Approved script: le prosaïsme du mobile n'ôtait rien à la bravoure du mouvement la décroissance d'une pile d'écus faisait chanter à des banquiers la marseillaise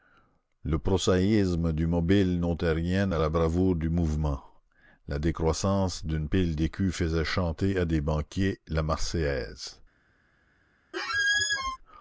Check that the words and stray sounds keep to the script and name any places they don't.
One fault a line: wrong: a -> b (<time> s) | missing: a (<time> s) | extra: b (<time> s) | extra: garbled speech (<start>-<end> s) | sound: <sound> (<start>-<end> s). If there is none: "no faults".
sound: squeak (10.9-11.8 s)